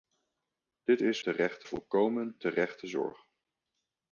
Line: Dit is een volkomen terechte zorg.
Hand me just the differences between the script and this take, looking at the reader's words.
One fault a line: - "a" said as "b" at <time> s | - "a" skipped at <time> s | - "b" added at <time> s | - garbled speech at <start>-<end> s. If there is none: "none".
- "een" said as "terechte" at 1.2 s